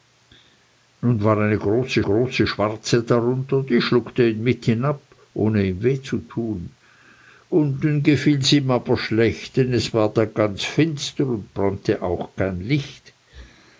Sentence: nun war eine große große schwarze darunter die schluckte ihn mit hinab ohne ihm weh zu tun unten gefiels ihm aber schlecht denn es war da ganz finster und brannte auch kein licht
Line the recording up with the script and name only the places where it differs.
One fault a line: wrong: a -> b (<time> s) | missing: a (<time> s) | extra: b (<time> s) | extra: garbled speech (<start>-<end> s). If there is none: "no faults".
no faults